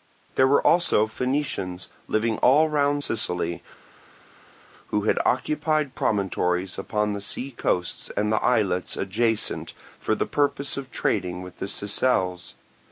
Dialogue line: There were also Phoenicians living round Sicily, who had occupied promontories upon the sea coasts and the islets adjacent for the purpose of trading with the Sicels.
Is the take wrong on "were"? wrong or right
right